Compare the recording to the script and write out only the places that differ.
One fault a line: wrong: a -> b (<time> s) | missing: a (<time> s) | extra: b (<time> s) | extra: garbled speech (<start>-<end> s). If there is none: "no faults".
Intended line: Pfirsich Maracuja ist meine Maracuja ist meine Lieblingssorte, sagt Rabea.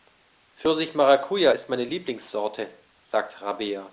missing: Maracuja ist meine (1.8 s)